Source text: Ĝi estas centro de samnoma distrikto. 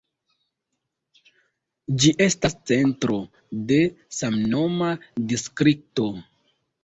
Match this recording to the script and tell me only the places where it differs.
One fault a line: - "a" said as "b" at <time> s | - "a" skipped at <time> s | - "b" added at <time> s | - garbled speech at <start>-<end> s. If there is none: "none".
none